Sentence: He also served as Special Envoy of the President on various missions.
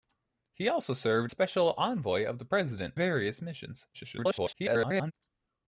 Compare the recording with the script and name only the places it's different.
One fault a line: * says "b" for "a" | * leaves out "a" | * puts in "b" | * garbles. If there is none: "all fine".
* leaves out "as"
* leaves out "on"
* garbles